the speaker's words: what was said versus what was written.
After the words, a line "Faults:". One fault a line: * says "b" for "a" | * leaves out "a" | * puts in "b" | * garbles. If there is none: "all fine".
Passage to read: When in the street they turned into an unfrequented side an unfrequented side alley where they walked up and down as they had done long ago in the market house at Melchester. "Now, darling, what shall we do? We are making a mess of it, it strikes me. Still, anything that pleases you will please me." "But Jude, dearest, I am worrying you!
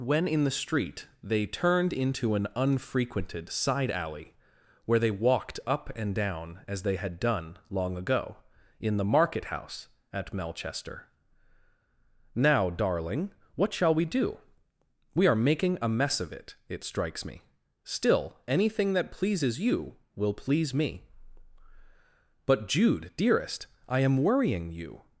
When in the street they turned into an unfrequented side alley where they walked up and down as they had done long ago in the market house at Melchester. "Now, darling, what shall we do? We are making a mess of it, it strikes me. Still, anything that pleases you will please me." "But Jude, dearest, I am worrying you!
Faults:
* leaves out "an unfrequented side"